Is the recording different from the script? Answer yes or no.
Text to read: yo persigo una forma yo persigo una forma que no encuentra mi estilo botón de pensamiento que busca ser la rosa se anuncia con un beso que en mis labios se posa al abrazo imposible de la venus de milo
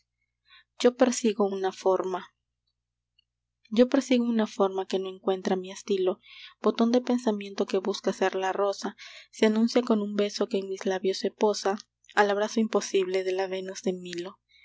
no